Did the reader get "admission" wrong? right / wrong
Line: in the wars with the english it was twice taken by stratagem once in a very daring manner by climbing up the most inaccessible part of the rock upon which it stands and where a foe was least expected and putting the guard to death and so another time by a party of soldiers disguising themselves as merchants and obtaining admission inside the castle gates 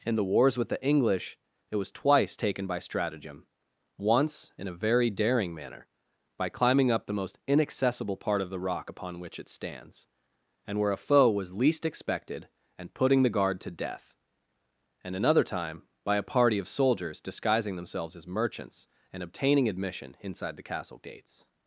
right